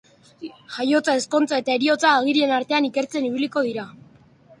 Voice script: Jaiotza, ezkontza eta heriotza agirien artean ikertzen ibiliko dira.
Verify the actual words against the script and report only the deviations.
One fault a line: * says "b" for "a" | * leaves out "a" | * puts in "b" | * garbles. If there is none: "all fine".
all fine